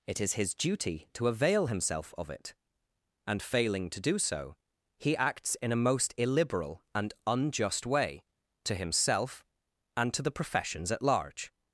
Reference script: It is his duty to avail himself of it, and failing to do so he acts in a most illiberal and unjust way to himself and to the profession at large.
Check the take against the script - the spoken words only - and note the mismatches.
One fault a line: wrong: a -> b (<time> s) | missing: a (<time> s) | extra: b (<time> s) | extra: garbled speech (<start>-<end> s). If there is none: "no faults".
wrong: profession -> professions (10.3 s)